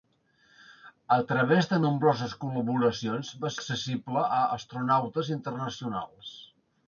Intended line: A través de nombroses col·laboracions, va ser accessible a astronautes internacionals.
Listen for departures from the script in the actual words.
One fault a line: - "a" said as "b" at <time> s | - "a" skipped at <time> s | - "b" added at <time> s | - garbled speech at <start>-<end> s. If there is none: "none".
- "ser" skipped at 3.5 s